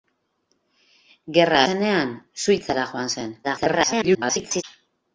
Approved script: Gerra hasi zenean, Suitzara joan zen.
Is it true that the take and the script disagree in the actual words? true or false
true